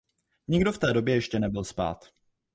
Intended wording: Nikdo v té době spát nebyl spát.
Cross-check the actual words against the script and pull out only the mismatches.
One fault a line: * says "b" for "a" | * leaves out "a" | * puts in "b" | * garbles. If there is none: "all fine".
* says "ještě" for "spát"